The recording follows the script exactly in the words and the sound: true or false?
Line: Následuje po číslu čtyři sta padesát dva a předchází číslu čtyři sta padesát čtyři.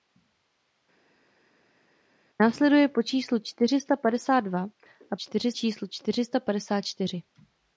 false